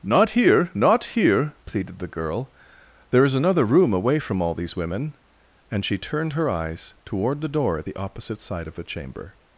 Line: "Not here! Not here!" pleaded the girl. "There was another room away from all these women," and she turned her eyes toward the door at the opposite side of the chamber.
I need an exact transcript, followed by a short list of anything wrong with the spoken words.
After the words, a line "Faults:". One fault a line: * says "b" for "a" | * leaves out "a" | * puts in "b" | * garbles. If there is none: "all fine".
"Not here! Not here!" pleaded the girl. "There is another room away from all these women," and she turned her eyes toward the door at the opposite side of the chamber.
Faults:
* says "is" for "was"